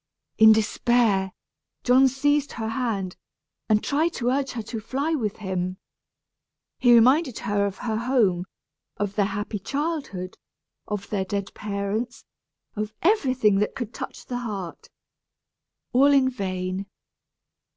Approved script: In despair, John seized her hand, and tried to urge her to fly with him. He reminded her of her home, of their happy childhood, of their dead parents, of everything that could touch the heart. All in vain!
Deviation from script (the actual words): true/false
false